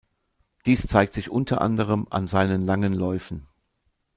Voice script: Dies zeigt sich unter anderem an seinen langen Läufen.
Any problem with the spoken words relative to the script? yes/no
no